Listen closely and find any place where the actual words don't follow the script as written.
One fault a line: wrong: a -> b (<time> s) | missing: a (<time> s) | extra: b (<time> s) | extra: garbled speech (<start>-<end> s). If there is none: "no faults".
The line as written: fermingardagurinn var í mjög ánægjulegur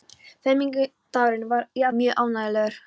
no faults